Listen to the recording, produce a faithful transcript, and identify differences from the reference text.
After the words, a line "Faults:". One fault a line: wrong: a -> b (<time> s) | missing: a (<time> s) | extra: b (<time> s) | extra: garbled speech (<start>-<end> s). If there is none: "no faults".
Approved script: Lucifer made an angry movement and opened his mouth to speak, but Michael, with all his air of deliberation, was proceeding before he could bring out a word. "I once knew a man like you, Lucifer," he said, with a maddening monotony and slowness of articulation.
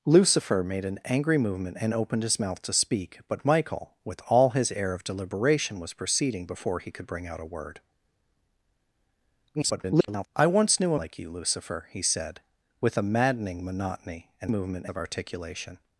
Lucifer made an angry movement and opened his mouth to speak, but Michael, with all his air of deliberation, was proceeding before he could bring out a word. [garbled] "I once knew a like you, Lucifer," he said, with a maddening monotony and movement of articulation.
Faults:
extra: garbled speech (9.5-10.3 s)
missing: man (11.0 s)
wrong: slowness -> movement (14.5 s)